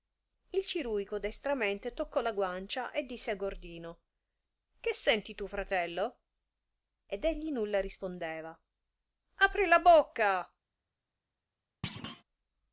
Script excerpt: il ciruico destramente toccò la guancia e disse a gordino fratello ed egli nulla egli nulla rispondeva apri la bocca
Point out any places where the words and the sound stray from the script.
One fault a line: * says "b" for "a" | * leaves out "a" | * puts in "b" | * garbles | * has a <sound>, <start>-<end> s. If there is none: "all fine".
* puts in "che senti tu"
* leaves out "egli nulla"
* has a thud, 11.8-12.2 s